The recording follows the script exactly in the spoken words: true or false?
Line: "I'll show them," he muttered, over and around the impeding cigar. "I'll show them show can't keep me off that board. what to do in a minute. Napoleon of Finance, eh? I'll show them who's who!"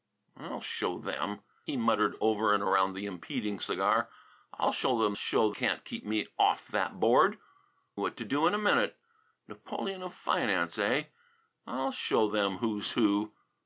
true